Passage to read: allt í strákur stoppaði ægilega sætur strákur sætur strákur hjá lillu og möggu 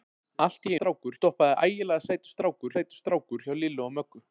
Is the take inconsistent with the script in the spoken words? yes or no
no